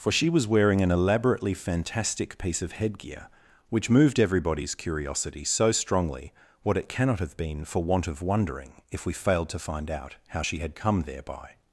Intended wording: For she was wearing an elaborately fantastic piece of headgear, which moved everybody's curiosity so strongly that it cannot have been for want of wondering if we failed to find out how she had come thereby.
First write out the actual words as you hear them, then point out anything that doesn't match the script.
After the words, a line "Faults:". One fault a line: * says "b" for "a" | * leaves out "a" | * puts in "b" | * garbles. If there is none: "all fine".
For she was wearing an elaborately fantastic piece of headgear, which moved everybody's curiosity so strongly what it cannot have been for want of wondering if we failed to find out how she had come thereby.
Faults:
* says "what" for "that"